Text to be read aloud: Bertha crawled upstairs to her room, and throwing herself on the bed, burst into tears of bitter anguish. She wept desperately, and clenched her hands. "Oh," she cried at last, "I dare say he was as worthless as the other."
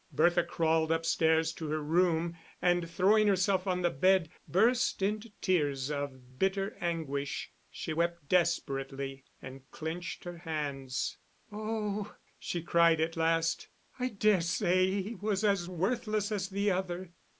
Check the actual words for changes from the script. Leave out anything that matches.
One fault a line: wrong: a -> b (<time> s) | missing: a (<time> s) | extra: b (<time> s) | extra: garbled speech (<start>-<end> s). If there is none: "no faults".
no faults